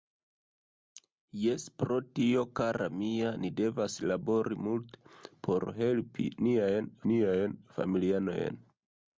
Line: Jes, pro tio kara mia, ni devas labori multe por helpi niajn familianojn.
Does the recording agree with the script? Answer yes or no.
no